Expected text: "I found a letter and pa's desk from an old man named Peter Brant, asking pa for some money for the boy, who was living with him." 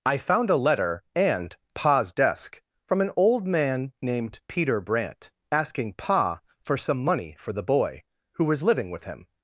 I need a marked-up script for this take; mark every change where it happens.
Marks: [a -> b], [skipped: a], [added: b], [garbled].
"I found a letter and pa's desk from an old man named Peter Brant, asking pa for some money for the boy, who was living with him."